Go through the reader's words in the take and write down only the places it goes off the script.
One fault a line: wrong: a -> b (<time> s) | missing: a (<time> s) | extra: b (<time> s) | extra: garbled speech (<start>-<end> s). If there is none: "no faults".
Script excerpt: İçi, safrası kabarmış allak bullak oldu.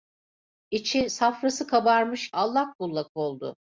no faults